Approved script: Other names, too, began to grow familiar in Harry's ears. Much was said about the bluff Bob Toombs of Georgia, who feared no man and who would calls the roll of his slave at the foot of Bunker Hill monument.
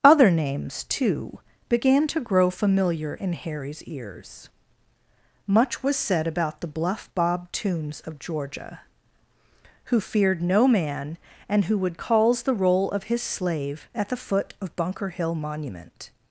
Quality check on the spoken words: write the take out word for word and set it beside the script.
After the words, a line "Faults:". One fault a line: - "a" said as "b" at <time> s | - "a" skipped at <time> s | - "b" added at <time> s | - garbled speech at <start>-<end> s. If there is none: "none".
Other names, too, began to grow familiar in Harry's ears. Much was said about the bluff Bob Toombs of Georgia, who feared no man and who would calls the roll of his slave at the foot of Bunker Hill monument.
Faults:
none